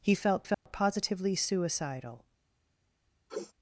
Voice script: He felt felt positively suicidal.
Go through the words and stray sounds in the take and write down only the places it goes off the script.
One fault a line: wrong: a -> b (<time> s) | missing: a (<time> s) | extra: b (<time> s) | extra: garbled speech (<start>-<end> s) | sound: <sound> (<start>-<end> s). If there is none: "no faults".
sound: dropout (0.5-0.7 s)
sound: sniff (3.3-3.5 s)